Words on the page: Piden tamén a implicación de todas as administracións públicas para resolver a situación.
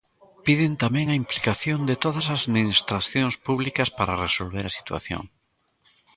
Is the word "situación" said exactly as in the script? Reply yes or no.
yes